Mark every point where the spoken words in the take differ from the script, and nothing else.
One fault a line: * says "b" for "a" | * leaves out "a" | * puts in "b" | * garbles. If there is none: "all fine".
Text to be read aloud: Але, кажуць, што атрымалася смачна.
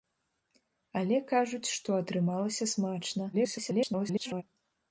* garbles